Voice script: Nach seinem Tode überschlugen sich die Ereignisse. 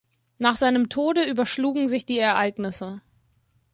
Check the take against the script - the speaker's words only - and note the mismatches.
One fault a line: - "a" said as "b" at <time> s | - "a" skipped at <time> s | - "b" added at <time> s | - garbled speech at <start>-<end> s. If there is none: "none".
none